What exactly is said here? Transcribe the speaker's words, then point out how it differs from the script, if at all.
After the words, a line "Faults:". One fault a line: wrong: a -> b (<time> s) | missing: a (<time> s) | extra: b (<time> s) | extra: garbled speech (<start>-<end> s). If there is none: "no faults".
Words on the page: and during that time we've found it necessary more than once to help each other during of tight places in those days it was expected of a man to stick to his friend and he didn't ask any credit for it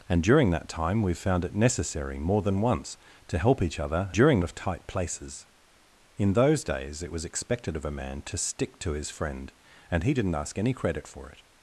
and during that time we've found it necessary more than once to help each other during of tight places in those days it was expected of a man to stick to his friend and he didn't ask any credit for it
Faults:
no faults